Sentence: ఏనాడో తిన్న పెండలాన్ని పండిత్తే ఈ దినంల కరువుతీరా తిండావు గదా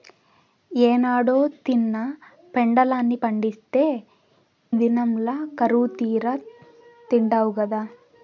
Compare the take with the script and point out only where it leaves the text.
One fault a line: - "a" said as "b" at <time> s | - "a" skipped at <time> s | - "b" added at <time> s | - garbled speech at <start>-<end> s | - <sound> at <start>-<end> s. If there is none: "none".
- "ఈ" skipped at 3.9 s